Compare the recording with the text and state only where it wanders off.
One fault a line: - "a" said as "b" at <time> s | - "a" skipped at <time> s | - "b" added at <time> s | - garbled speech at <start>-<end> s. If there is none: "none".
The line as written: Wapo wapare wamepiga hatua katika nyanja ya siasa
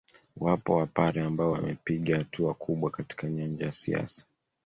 - "ambao" added at 1.2 s
- "kubwa" added at 2.5 s